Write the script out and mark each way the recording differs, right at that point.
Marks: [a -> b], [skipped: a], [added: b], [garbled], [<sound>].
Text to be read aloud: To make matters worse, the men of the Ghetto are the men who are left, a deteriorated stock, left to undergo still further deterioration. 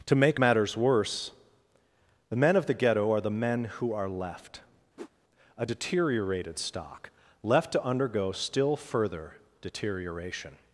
To make matters worse, the men of the Ghetto are the men who are left, [whoosh] a deteriorated stock, left to undergo still further deterioration.